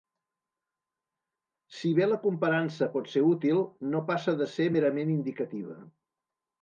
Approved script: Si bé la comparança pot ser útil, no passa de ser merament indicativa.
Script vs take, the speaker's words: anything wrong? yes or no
no